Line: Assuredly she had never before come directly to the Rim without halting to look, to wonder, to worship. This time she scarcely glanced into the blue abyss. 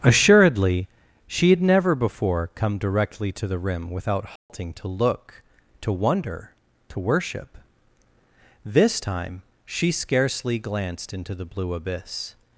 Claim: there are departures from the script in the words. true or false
false